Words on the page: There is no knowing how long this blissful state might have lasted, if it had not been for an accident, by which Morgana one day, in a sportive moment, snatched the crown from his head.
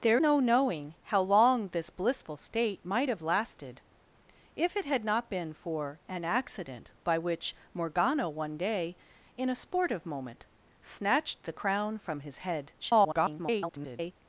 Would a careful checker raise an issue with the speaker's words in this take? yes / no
yes